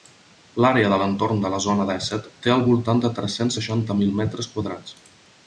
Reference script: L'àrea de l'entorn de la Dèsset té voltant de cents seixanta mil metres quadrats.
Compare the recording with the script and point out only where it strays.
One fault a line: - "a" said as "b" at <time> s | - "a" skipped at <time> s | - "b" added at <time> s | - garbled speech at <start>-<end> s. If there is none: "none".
- "Zona" added at 1.6 s
- "al" added at 2.5 s
- "tres" added at 3.2 s